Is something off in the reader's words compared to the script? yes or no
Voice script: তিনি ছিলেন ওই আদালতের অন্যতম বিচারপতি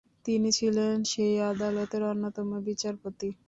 yes